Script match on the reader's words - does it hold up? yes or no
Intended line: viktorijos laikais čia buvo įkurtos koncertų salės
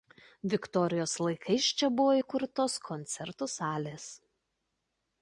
yes